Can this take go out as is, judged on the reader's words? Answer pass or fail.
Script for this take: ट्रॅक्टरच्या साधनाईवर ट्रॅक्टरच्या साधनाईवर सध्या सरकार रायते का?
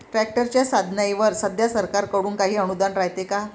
fail